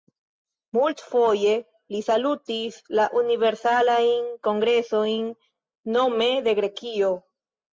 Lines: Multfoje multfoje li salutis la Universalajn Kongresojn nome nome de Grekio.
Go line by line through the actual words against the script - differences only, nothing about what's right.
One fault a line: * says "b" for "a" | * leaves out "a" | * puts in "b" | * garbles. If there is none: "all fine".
* leaves out "multfoje"
* leaves out "nome"